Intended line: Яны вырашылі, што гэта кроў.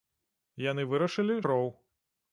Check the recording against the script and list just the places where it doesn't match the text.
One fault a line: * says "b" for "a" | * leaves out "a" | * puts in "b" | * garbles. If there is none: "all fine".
* leaves out "што гэта"